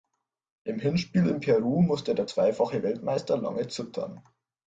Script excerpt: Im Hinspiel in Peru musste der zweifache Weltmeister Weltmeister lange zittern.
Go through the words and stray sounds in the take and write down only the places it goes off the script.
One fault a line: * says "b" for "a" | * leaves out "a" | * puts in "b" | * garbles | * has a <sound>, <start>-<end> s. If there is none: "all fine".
* leaves out "Weltmeister"